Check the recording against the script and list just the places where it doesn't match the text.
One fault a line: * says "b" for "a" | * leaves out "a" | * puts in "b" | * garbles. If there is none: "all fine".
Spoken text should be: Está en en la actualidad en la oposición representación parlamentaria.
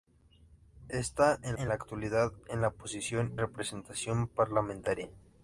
all fine